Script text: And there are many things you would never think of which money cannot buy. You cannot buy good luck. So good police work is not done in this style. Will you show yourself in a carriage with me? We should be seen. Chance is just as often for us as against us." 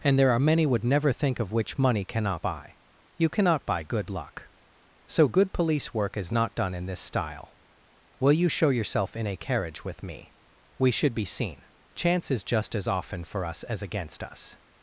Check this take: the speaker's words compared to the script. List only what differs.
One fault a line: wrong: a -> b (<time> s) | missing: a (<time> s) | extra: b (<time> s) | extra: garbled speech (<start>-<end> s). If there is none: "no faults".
missing: things you (0.7 s)